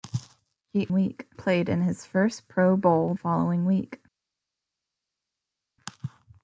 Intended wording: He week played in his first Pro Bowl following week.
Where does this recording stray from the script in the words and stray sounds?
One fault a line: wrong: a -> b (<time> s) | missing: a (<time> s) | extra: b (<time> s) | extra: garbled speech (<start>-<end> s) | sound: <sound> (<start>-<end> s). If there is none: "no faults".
no faults